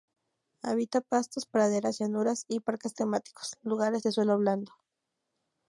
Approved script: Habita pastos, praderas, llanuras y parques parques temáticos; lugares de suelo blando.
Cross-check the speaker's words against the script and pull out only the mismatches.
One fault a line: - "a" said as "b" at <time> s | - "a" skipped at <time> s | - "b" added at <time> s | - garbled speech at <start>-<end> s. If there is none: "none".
- "parques" skipped at 2.9 s